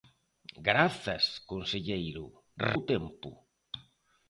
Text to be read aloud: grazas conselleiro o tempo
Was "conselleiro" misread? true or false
false